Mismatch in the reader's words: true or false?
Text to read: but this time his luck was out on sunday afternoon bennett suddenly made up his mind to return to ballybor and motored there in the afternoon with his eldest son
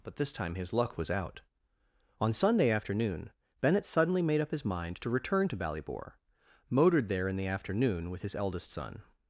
true